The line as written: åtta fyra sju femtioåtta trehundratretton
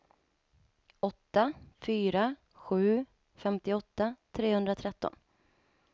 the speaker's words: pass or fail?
pass